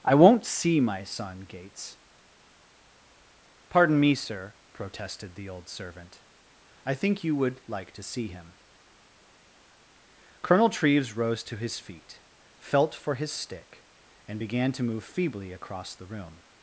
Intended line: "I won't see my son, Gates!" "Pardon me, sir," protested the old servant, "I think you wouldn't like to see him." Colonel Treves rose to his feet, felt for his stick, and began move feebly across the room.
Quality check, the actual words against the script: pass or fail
fail